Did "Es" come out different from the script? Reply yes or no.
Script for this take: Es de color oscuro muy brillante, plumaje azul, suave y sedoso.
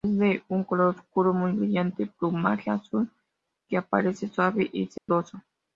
no